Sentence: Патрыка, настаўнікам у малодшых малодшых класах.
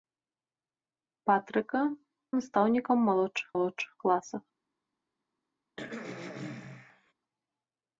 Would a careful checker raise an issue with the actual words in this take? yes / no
no